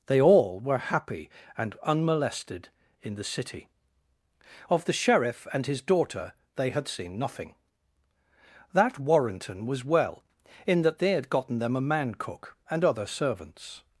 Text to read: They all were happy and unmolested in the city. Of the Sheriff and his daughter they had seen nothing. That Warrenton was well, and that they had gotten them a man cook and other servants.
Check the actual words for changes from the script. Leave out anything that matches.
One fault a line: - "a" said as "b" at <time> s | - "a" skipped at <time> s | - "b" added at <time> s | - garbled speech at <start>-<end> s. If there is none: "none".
- "and" said as "in" at 10.7 s